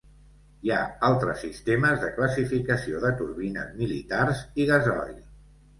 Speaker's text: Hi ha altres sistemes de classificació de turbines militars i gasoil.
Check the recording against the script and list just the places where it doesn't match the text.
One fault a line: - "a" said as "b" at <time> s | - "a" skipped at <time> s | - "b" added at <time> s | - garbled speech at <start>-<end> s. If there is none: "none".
none